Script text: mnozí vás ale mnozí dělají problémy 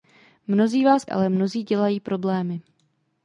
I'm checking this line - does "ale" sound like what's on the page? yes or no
yes